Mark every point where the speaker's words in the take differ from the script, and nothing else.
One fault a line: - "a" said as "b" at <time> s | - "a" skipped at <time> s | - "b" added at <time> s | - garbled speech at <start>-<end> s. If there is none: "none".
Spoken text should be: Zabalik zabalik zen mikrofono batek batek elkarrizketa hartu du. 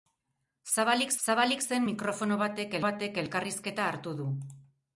none